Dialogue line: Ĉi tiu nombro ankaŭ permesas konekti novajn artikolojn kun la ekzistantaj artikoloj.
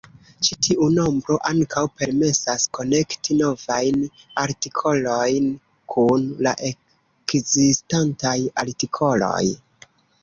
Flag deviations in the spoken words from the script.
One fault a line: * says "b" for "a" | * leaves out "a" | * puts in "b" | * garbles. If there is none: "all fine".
all fine